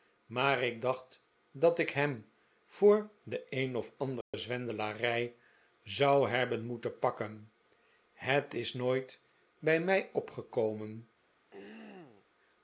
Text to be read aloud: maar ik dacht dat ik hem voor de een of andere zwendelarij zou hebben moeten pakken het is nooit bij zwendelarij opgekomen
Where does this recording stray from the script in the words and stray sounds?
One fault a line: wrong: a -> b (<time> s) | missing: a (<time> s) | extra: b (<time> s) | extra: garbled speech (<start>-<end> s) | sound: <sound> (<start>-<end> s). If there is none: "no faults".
sound: dropout (4.2-4.3 s)
wrong: zwendelarij -> mij (9.8 s)
sound: throat clearing (11.5-12.3 s)